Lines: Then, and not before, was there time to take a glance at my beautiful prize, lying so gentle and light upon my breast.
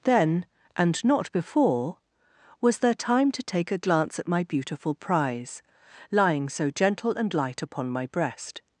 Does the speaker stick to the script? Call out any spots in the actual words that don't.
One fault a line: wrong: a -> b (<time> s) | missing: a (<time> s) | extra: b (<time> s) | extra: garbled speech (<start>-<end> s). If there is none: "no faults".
no faults